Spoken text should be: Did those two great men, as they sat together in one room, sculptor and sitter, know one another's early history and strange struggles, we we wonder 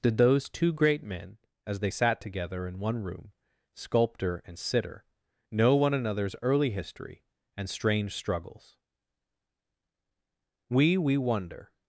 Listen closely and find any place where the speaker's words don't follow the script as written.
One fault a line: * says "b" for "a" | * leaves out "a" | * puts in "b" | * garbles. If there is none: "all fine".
all fine